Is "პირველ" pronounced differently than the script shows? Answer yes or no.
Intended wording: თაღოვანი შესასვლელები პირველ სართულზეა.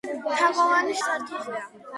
yes